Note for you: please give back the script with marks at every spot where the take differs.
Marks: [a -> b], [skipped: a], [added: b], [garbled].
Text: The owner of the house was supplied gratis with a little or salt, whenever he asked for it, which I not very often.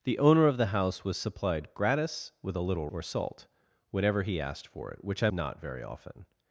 The owner of the house was supplied gratis with a little or salt, whenever he asked for it, which I not very often.